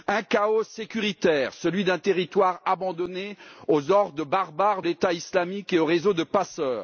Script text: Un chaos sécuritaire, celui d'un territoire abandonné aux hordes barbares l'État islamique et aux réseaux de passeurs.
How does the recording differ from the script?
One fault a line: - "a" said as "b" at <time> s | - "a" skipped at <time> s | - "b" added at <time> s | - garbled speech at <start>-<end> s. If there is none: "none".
none